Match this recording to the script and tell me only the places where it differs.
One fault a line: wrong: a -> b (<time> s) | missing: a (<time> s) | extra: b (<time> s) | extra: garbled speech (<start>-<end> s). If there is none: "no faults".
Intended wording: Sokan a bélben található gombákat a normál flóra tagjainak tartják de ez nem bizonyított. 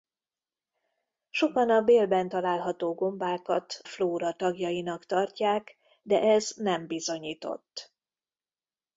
missing: a normál (3.8 s)